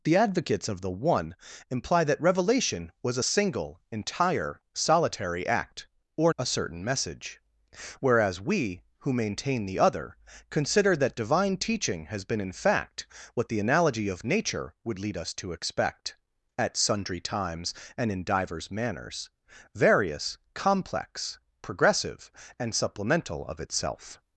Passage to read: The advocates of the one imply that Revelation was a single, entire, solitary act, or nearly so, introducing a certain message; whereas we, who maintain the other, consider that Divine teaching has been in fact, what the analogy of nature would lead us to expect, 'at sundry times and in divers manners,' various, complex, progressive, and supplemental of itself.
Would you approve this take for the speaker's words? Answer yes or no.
no